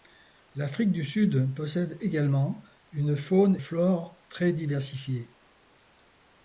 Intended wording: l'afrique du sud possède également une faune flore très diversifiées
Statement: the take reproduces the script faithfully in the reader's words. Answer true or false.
true